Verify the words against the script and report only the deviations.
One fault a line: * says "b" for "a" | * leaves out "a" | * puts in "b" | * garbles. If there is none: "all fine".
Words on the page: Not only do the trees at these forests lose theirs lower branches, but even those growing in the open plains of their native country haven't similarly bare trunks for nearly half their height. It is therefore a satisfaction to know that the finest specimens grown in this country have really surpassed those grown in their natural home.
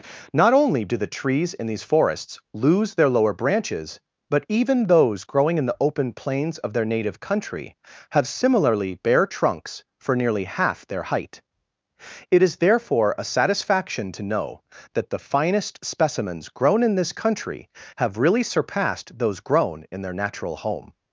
* says "in" for "at"
* says "their" for "theirs"
* says "have" for "haven't"